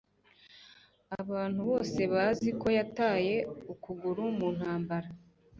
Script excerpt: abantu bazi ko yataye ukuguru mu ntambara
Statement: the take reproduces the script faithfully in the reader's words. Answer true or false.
false